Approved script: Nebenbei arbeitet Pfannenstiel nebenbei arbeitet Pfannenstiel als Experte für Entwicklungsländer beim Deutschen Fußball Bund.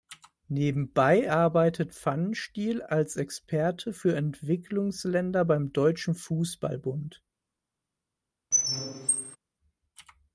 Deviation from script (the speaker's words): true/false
true